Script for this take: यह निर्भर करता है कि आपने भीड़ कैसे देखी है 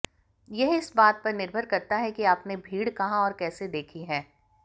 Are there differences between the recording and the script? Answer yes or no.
yes